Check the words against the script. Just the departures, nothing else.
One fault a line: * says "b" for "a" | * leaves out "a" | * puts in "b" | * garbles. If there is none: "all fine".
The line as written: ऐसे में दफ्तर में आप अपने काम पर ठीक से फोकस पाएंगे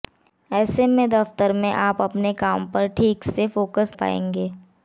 all fine